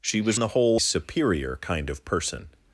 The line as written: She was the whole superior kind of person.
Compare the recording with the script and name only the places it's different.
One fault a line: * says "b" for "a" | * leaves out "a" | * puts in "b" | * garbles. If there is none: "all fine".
all fine